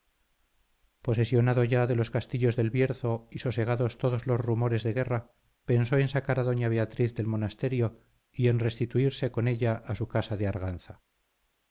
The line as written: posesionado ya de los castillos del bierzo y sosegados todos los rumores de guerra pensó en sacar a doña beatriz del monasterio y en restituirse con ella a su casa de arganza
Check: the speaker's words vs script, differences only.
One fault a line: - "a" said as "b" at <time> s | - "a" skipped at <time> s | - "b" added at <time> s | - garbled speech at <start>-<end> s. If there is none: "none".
none